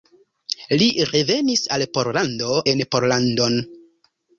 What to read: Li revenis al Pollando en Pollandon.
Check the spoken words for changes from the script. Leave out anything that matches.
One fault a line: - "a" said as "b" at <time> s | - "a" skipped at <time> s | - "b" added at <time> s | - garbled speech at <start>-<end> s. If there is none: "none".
none